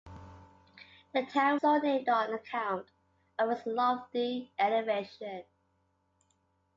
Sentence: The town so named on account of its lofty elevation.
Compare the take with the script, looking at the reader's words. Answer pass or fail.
pass